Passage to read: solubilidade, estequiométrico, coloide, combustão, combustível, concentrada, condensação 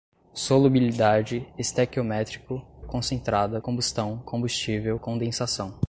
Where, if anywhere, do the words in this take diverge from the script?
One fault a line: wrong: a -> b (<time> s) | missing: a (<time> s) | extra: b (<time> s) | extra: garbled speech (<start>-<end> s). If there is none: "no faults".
wrong: coloide -> concentrada (2.8 s)
missing: concentrada (5.0 s)